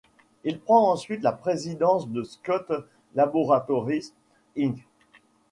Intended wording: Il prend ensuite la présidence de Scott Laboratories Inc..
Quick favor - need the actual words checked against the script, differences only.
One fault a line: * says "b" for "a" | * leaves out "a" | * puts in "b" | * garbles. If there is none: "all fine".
all fine